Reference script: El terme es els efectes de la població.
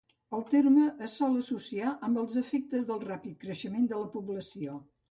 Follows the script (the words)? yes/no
no